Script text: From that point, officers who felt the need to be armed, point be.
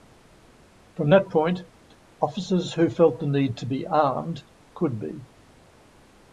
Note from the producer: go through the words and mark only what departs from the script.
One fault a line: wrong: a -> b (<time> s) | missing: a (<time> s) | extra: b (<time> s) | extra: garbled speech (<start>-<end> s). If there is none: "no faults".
wrong: point -> could (4.8 s)